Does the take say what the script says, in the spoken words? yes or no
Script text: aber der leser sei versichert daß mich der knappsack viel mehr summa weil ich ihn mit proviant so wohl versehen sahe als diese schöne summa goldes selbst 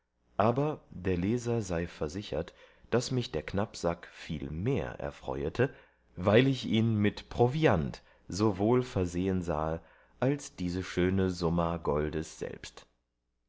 no